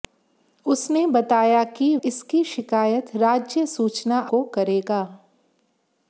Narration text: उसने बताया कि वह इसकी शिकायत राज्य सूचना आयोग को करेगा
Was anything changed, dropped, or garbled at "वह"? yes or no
yes